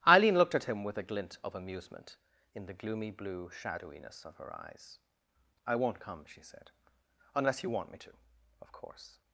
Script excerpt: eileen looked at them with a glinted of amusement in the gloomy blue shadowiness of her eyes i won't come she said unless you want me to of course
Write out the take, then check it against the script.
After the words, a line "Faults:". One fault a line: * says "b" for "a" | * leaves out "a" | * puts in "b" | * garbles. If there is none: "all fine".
eileen looked at him with a glint of amusement in the gloomy blue shadowiness of her eyes i won't come she said unless you want me to of course
Faults:
* says "him" for "them"
* says "glint" for "glinted"